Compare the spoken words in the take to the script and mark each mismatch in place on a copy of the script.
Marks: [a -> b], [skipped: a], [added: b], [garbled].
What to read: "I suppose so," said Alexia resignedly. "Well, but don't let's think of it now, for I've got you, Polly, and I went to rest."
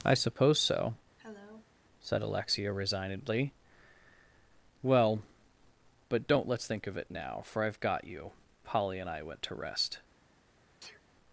"I suppose so," said Alexia resignedly. "Well, but don't let's think of it now, for I've got you, Polly, and I went to rest."